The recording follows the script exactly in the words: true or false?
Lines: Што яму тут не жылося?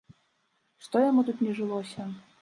true